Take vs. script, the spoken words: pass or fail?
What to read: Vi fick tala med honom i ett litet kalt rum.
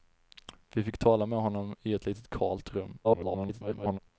fail